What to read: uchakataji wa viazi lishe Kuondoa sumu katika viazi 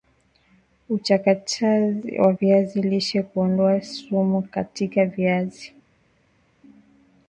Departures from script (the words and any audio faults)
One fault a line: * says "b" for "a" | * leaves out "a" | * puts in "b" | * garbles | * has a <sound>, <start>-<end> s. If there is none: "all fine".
all fine